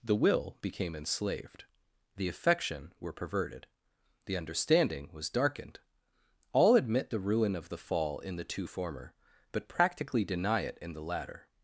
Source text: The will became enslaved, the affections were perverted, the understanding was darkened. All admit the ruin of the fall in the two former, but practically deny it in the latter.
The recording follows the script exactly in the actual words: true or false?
false